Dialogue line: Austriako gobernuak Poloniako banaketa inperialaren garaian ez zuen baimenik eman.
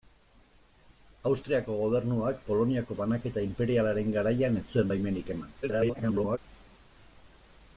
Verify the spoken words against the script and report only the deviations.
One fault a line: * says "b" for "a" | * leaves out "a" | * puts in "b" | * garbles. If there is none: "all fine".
* garbles